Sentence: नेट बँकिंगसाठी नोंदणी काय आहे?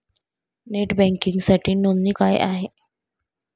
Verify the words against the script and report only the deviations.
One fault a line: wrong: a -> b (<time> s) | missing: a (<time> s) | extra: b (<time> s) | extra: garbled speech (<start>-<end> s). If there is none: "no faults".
no faults